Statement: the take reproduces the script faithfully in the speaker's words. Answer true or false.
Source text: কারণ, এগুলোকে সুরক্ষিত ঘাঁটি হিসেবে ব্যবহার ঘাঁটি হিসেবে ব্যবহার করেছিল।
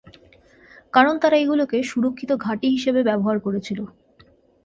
false